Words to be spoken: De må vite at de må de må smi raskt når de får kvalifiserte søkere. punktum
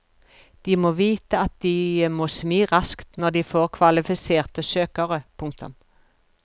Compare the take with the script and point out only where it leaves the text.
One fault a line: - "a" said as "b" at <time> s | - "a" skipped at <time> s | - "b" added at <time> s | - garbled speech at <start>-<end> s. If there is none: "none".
- "de må" skipped at 2.3 s